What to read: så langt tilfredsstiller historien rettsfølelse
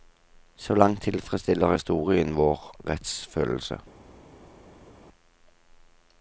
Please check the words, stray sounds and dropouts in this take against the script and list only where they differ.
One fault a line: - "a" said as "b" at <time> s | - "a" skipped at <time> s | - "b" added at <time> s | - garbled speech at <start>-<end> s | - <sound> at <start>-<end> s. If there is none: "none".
- "vår" added at 2.4 s